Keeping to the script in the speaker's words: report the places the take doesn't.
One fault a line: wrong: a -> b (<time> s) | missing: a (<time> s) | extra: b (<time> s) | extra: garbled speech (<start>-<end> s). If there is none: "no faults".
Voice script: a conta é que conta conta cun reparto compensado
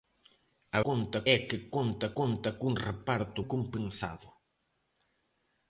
no faults